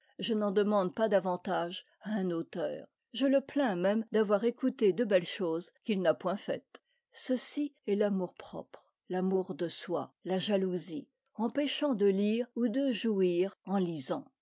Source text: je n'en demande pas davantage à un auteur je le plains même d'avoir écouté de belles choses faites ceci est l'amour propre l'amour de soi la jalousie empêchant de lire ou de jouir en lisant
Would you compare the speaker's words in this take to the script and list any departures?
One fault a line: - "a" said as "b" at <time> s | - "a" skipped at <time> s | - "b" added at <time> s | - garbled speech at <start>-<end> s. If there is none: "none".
- "qu'il n'a point" added at 5.8 s